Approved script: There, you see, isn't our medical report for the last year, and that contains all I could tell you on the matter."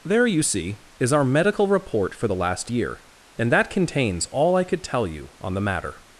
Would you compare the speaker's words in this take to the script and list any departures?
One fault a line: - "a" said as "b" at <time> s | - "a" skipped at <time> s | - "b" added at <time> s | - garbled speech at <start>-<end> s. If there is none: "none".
- "isn't" said as "is" at 1.0 s